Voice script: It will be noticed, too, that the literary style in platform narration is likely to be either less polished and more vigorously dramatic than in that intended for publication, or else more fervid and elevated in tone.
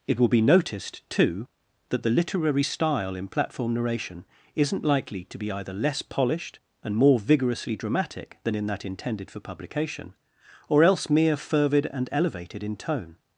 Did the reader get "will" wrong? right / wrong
right